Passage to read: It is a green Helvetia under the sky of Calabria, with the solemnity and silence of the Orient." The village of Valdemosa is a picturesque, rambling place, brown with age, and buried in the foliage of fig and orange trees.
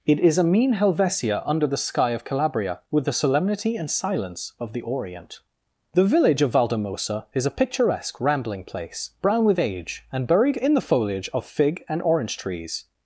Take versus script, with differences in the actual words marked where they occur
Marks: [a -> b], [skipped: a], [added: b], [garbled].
It is a [green -> mean] Helvetia under the sky of Calabria, with the solemnity and silence of the Orient." The village of Valdemosa is a picturesque, rambling place, brown with age, and buried in the foliage of fig and orange trees.